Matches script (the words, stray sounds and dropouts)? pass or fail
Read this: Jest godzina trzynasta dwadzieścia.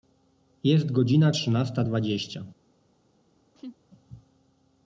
fail